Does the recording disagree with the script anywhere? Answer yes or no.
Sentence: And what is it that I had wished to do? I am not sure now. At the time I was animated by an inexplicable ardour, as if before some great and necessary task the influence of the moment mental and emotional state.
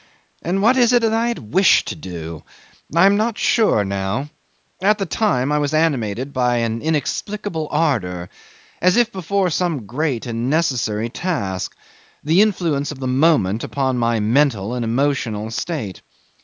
yes